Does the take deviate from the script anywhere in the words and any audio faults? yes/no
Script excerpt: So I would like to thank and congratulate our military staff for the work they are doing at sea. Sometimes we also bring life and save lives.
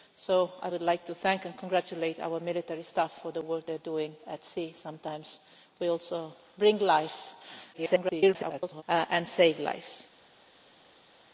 yes